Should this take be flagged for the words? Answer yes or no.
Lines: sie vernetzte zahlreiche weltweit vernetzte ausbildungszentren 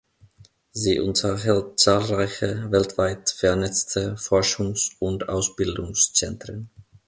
yes